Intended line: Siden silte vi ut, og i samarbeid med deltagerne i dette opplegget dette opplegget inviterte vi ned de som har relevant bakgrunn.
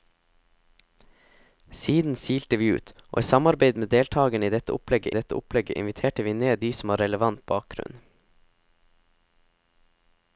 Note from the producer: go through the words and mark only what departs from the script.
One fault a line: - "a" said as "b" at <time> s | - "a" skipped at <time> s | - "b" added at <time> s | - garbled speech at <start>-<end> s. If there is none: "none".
none